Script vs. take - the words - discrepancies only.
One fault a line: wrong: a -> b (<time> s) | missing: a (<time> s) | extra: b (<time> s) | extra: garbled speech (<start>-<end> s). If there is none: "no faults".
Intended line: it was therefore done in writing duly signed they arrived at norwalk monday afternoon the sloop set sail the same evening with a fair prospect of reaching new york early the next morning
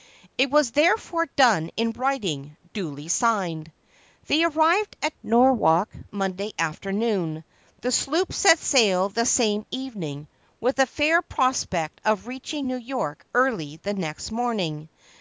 no faults